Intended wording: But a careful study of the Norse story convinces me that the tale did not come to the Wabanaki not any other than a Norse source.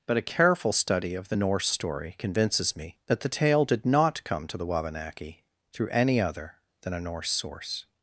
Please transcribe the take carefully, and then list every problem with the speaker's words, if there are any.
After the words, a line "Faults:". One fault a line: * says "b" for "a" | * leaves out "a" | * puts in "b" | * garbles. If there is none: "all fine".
But a careful study of the Norse story convinces me that the tale did not come to the Wabanaki through any other than a Norse source.
Faults:
* says "through" for "not"